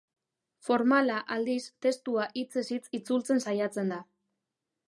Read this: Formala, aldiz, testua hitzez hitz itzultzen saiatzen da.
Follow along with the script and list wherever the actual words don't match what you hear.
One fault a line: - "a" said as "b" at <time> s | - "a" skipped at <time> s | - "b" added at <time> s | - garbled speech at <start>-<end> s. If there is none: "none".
none